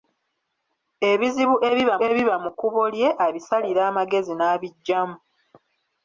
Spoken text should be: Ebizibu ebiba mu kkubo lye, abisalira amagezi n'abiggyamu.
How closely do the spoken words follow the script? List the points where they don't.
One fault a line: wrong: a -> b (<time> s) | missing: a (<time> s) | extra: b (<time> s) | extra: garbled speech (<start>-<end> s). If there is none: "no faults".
extra: ebiba (2.1 s)